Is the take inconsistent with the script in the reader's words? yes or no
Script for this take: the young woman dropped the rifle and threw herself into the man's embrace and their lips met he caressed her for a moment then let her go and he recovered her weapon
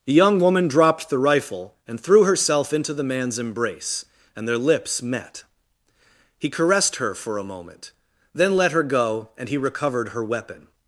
no